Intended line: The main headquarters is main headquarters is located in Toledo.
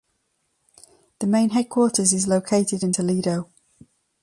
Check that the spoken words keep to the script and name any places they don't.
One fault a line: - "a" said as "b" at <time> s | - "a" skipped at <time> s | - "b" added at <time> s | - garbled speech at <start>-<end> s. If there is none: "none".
- "main headquarters is" skipped at 2.3 s